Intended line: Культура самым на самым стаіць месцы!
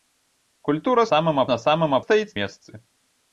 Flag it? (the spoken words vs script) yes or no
no